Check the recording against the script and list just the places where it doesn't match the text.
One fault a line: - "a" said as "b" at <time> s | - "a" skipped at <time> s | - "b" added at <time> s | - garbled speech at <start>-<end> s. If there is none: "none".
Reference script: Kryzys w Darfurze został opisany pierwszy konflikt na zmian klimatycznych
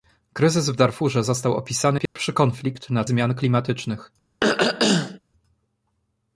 none